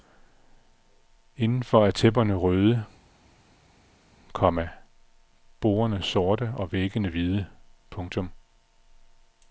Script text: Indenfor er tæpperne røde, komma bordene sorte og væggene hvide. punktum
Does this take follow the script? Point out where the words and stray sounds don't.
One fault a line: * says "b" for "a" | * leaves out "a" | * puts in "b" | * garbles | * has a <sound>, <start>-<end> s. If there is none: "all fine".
all fine